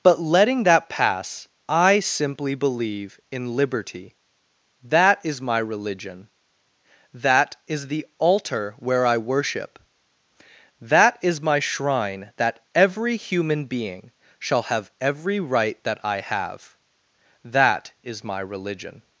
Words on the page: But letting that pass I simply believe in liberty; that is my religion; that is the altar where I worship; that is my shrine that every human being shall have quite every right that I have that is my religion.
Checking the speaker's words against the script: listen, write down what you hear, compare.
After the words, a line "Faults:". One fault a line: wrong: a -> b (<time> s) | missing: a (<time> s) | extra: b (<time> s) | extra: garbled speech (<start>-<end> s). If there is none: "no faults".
But letting that pass I simply believe in liberty; that is my religion; that is the altar where I worship; that is my shrine that every human being shall have every right that I have that is my religion.
Faults:
missing: quite (14.9 s)